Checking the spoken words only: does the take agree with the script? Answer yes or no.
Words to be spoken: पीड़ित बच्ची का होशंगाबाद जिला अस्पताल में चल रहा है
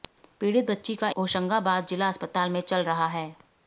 yes